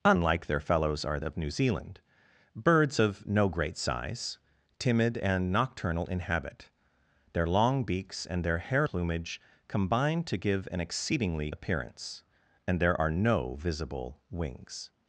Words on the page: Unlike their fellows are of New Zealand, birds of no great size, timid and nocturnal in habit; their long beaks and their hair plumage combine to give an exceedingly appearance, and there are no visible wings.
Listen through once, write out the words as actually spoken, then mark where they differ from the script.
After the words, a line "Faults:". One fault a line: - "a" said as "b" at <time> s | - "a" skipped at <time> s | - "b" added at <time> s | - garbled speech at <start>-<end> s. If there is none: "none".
Unlike their fellows are of New Zealand, birds of no great size, timid and nocturnal in habit; their long beaks and their hair plumage combine to give an exceedingly appearance, and there are no visible wings.
Faults:
none